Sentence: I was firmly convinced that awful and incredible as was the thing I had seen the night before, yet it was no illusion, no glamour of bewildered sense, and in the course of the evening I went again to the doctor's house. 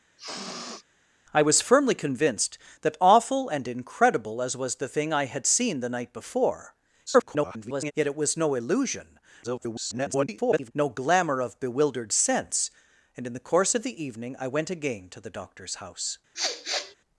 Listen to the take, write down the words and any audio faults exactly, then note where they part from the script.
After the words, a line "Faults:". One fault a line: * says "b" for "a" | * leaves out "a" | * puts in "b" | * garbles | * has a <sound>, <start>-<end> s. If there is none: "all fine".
I was firmly convinced that awful and incredible as was the thing I had seen the night before, [garbled] yet it was no illusion, [garbled] no glamour of bewildered sense, and in the course of the evening I went again to the doctor's house.
Faults:
* has a sniff, 0.2-0.8 s
* garbles
* garbles
* has a sniff, 16.3-16.9 s